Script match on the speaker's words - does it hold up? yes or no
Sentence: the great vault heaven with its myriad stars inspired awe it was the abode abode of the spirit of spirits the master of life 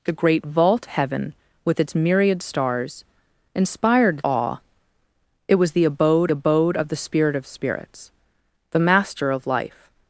yes